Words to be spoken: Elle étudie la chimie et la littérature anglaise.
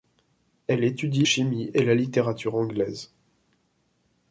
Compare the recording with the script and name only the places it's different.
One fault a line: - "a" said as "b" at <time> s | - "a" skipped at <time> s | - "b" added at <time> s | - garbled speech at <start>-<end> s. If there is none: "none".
- "la" skipped at 1.3 s